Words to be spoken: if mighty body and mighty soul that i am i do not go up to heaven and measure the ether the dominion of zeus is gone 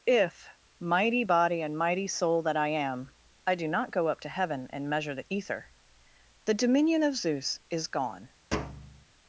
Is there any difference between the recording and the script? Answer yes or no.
no